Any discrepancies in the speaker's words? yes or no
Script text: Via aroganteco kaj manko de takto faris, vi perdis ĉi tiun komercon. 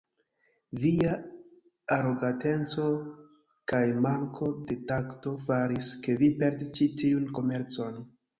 yes